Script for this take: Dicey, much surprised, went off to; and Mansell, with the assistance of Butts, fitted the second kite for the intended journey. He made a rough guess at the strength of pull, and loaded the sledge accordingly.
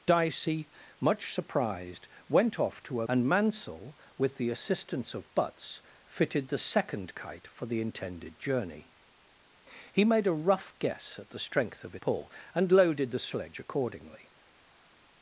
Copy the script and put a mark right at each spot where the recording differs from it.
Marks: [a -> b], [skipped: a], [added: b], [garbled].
Dicey, much surprised, went off to; and Mansell, with the assistance of Butts, fitted the second kite for the intended journey. He made a rough guess at the strength of pull, and loaded the sledge accordingly.